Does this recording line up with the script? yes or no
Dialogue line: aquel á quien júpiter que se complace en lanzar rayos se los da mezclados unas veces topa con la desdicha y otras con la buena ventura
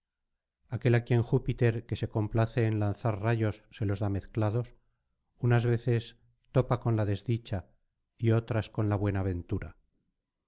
yes